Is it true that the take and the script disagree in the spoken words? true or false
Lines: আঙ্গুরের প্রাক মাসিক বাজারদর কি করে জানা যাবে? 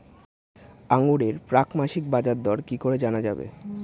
false